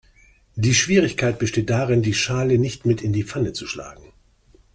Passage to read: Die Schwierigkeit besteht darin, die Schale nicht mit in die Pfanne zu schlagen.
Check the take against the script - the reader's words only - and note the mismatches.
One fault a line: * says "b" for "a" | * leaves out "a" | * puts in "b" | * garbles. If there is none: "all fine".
all fine